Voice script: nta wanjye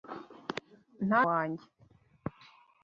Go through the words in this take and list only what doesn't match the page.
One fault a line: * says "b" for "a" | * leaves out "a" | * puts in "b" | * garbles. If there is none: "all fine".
all fine